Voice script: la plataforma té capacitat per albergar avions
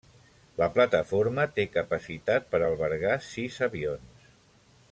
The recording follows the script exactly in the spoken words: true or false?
false